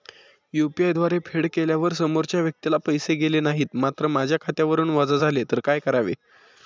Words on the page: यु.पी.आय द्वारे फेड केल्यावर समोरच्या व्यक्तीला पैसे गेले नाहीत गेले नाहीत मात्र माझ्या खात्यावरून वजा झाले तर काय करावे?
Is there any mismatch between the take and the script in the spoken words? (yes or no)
yes